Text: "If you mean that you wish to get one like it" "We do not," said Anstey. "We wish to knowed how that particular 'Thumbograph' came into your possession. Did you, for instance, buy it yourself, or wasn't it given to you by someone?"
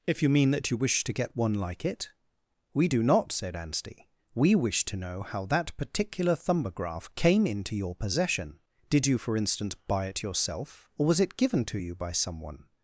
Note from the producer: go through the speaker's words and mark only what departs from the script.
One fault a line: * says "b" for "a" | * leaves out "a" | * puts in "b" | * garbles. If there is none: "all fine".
* says "know" for "knowed"
* says "was" for "wasn't"